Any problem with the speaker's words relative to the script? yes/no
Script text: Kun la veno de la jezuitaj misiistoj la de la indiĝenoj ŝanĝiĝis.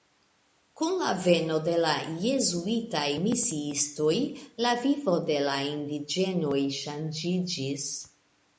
yes